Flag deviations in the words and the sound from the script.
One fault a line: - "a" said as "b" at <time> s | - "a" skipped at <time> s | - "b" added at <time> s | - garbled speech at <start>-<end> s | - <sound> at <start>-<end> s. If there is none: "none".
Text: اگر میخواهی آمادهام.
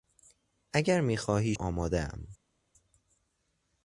none